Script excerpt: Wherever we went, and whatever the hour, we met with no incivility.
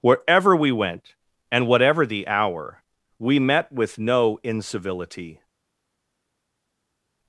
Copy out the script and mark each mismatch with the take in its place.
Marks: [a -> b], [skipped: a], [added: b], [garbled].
Wherever we went, and whatever the hour, we met with no incivility.